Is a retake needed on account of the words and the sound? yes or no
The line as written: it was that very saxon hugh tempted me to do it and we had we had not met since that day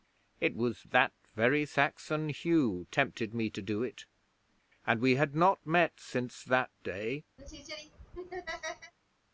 yes